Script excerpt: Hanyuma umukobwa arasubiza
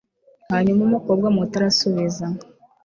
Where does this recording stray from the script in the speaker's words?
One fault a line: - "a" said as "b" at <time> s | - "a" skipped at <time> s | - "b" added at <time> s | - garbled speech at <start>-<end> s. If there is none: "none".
- "muto" added at 1.4 s